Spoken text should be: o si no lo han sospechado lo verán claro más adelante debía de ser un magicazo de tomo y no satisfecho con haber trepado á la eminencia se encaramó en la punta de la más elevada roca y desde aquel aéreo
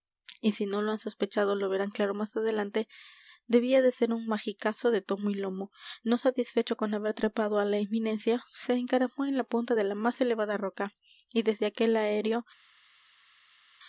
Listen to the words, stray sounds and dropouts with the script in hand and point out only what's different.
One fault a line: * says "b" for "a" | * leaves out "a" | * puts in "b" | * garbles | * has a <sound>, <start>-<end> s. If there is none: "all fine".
* says "y" for "o"
* puts in "lomo"